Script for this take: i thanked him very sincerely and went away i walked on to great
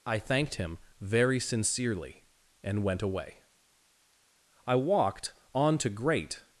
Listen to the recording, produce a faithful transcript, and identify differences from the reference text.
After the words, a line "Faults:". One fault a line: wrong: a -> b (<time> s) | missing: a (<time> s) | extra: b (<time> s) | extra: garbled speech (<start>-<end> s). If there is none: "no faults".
i thanked him very sincerely and went away i walked on to great
Faults:
no faults